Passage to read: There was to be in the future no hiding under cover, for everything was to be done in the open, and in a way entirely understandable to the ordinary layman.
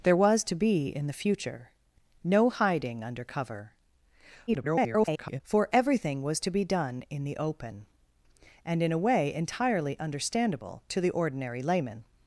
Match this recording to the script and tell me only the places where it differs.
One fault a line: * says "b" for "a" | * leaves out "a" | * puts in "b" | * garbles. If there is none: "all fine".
* garbles